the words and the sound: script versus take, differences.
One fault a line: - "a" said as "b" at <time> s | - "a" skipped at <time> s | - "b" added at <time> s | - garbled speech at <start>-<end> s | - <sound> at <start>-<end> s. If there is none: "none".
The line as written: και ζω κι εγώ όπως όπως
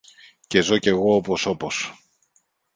none